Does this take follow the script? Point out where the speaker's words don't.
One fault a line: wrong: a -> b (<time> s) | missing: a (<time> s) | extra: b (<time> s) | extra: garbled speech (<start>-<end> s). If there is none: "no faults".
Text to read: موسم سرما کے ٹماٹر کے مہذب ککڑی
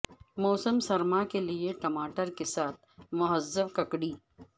extra: لئے (1.4 s)
extra: ساتھ (2.5 s)